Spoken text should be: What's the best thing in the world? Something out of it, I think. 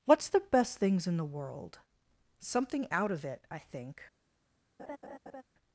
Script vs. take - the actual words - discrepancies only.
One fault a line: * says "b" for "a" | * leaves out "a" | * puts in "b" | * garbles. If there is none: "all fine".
* says "things" for "thing"